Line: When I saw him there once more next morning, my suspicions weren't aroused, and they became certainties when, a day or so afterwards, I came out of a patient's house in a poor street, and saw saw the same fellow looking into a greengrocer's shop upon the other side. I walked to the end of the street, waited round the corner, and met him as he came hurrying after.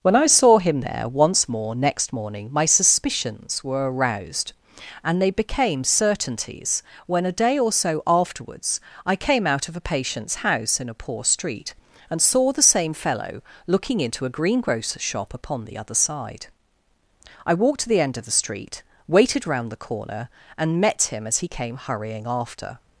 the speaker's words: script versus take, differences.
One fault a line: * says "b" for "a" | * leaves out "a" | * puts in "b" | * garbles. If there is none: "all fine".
* says "were" for "weren't"
* leaves out "saw"